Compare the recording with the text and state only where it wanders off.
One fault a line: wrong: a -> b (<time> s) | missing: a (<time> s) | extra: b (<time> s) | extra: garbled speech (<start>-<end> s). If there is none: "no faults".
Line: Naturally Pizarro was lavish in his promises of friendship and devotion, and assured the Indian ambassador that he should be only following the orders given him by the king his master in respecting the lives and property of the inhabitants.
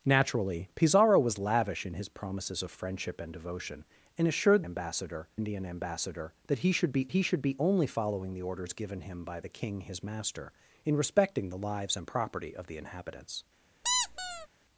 wrong: the -> ambassador (4.6 s)
extra: he should be (7.1 s)